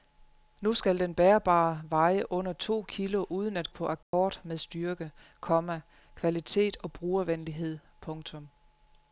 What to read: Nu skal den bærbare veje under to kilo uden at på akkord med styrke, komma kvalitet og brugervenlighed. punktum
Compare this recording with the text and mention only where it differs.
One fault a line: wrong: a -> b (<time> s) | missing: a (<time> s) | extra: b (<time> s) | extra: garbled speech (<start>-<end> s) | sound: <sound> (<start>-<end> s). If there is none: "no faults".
sound: dropout (4.0-4.1 s)